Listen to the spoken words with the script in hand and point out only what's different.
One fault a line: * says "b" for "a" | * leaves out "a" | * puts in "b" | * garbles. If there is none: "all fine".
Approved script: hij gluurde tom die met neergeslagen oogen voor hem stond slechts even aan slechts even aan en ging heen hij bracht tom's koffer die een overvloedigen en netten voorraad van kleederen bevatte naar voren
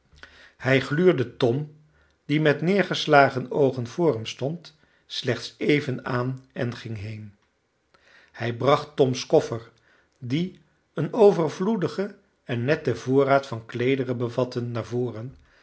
* leaves out "slechts even aan"